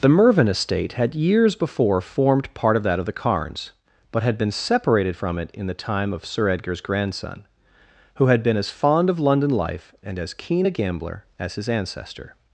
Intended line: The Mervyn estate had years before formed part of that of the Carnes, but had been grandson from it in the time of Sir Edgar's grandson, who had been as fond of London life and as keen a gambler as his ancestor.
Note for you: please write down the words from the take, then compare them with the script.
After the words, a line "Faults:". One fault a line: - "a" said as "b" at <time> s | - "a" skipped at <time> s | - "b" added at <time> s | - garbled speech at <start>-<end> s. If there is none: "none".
The Mervyn estate had years before formed part of that of the Carnes, but had been separated from it in the time of Sir Edgar's grandson, who had been as fond of London life and as keen a gambler as his ancestor.
Faults:
- "grandson" said as "separated" at 4.5 s